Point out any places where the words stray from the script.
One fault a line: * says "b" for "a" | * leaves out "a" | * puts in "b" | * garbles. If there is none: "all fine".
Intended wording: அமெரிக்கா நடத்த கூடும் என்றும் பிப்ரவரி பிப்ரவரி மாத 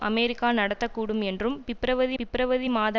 all fine